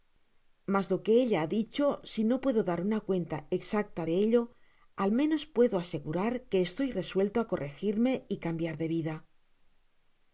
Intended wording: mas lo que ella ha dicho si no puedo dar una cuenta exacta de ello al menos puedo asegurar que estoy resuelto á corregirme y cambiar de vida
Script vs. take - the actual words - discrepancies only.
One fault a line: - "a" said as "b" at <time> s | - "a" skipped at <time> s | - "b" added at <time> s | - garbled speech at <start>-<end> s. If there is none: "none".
none